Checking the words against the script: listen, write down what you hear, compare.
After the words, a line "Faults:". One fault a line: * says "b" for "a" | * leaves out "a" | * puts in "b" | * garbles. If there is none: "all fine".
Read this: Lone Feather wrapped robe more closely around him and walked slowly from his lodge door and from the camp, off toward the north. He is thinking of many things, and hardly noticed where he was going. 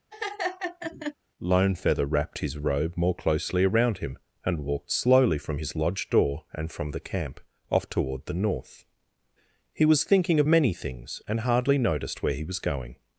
Lone Feather wrapped his robe more closely around him and walked slowly from his lodge door and from the camp, off toward the north. He was thinking of many things, and hardly noticed where he was going.
Faults:
* puts in "his"
* says "was" for "is"